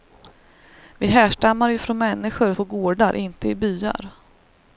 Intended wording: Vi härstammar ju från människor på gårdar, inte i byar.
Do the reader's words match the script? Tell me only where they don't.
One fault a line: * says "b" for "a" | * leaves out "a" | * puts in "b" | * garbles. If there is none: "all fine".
all fine